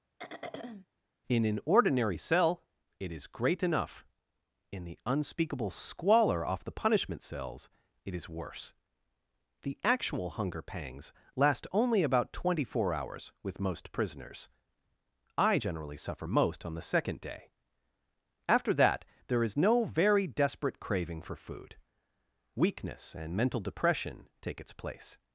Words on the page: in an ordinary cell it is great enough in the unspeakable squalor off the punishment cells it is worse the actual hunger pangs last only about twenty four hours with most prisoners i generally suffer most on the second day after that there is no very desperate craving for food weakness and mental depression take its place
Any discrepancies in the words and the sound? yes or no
yes